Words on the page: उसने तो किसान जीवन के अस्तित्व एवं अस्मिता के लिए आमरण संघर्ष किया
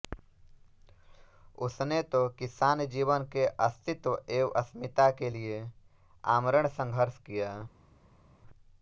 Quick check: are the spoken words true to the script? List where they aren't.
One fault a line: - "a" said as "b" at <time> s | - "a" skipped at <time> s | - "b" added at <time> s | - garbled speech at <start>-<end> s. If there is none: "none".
none